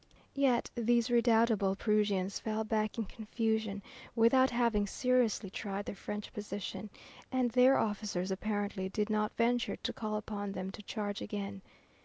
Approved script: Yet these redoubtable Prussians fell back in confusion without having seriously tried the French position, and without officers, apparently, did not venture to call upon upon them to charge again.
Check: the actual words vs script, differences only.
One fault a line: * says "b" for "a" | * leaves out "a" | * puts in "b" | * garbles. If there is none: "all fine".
* says "their" for "without"
* leaves out "upon"